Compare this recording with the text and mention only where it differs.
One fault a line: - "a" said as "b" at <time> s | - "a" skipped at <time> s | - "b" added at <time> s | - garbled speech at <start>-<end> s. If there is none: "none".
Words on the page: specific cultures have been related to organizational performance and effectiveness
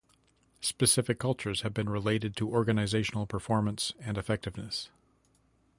none